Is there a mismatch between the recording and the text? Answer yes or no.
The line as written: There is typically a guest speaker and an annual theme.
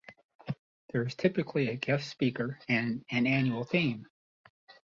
no